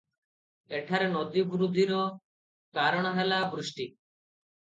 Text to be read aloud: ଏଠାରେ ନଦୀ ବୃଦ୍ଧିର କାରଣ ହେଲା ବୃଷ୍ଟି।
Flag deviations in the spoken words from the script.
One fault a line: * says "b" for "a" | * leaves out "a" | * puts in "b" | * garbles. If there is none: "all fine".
all fine